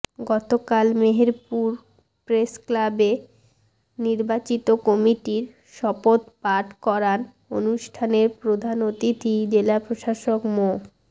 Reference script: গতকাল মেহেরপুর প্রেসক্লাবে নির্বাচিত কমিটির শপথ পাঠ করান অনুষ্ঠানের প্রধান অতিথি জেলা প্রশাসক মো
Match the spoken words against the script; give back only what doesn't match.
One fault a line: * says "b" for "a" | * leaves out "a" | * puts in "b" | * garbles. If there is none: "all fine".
all fine